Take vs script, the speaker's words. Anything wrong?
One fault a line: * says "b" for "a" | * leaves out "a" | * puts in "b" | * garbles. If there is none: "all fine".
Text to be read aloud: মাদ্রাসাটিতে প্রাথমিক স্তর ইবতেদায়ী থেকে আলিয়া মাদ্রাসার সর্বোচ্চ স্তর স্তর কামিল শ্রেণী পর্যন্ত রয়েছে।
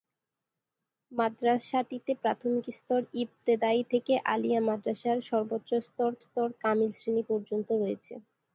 all fine